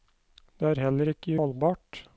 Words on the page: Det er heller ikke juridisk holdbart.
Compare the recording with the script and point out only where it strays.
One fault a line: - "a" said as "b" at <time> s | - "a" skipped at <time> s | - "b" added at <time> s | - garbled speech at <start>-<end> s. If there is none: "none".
- "juridisk" skipped at 1.4 s